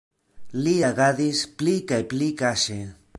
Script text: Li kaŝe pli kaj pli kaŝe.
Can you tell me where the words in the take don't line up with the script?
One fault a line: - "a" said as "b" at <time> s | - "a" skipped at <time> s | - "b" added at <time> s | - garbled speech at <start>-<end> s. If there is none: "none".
- "kaŝe" said as "agadis" at 0.9 s